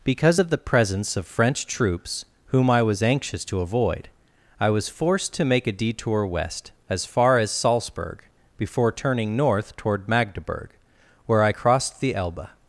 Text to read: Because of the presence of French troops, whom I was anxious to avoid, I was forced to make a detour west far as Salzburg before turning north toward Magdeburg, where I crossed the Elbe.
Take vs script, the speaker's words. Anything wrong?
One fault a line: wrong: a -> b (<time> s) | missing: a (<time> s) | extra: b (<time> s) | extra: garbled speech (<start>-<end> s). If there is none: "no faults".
extra: as (6.9 s)